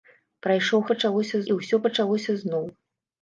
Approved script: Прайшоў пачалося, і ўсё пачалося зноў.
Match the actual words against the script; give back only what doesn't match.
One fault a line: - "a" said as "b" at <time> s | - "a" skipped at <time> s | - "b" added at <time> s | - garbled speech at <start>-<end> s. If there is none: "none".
none